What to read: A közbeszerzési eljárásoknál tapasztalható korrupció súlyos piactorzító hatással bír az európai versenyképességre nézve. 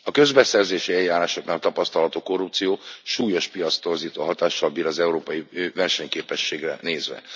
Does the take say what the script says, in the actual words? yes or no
yes